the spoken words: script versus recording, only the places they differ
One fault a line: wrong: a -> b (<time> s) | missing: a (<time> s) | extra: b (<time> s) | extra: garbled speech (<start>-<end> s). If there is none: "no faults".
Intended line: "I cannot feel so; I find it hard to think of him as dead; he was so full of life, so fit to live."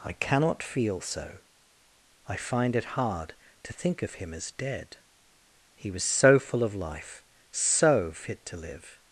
no faults